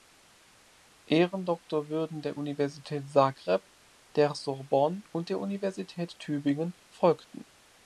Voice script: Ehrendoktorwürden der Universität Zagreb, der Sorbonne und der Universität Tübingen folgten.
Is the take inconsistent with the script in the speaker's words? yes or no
no